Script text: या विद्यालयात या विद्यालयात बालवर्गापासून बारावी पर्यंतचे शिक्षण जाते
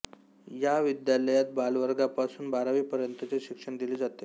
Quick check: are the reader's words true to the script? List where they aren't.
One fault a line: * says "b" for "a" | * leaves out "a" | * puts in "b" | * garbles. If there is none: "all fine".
* leaves out "या विद्यालयात"
* puts in "दिले"